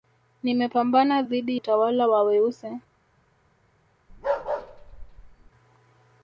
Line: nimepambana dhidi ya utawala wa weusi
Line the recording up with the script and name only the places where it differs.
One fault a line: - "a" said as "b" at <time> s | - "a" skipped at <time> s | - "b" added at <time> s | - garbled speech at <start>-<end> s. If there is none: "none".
- "ya" skipped at 1.6 s